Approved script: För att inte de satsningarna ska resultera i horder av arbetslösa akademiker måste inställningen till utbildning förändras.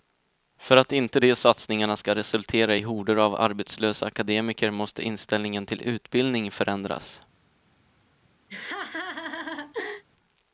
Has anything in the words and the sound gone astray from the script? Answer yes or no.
yes